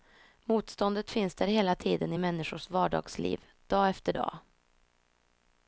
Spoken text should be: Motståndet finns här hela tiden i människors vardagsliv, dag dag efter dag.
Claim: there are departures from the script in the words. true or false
true